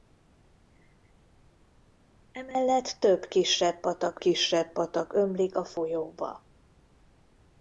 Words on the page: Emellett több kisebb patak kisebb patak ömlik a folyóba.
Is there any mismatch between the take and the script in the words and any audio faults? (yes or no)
no